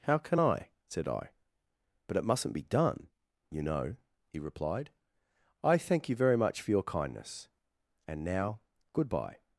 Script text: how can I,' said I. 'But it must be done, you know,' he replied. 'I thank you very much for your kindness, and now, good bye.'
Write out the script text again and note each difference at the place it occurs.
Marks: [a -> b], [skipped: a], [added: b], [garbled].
how can I,' said I. 'But it [must -> mustn't] be done, you know,' he replied. 'I thank you very much for your kindness, and now, good bye.'